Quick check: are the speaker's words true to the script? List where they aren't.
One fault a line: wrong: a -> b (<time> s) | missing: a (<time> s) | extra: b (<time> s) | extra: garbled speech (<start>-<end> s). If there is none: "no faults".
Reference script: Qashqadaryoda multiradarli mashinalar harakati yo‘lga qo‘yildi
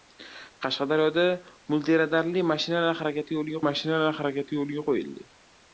extra: mashinalar harakati yo‘lga (3.7 s)